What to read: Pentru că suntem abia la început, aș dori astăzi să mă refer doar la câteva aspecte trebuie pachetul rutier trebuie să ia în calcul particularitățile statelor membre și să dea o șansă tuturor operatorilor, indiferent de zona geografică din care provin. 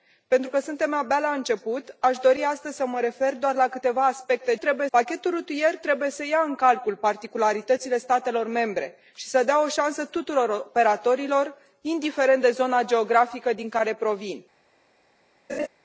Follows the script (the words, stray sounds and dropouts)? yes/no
no